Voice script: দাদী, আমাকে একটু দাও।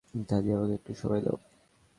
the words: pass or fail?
fail